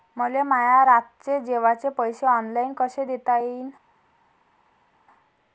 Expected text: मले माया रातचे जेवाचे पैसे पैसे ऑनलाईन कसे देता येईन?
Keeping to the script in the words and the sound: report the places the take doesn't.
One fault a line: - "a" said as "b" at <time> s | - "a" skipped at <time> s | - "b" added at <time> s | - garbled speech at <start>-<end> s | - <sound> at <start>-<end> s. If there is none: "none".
- "पैसे" skipped at 2.3 s